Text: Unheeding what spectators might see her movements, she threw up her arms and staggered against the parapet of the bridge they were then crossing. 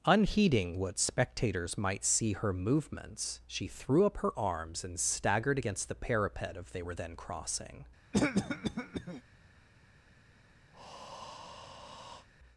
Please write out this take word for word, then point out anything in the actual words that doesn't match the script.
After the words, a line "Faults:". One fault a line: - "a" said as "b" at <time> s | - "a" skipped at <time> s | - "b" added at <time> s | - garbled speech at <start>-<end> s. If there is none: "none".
Unheeding what spectators might see her movements, she threw up her arms and staggered against the parapet of they were then crossing.
Faults:
- "the bridge" skipped at 6.7 s